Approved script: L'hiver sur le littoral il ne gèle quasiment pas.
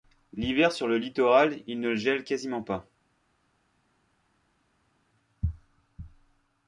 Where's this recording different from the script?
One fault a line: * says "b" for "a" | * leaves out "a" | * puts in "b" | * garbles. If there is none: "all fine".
all fine